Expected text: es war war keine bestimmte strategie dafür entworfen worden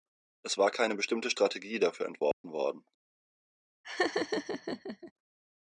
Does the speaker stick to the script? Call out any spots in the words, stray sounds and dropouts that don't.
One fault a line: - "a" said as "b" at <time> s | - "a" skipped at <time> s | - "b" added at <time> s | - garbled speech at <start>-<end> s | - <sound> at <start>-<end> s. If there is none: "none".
- "war" skipped at 0.7 s
- dropout at 2.3-2.4 s
- laugh at 3.8-5.1 s